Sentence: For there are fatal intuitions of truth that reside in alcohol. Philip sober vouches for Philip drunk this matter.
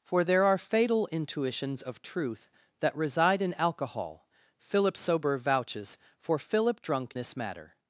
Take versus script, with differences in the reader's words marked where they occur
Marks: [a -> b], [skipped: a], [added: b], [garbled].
For there are fatal intuitions of truth that reside in alcohol. Philip sober vouches for Philip drunk this matter.